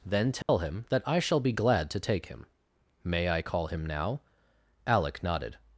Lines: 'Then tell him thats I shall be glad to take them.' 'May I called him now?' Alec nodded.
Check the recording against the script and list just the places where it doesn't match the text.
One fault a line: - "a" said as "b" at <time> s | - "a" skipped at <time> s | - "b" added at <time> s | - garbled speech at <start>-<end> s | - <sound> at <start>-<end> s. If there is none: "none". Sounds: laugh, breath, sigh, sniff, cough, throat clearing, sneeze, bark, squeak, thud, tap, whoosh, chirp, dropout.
- dropout at 0.4-0.5 s
- "thats" said as "that" at 0.9 s
- "them" said as "him" at 2.3 s
- "called" said as "call" at 3.4 s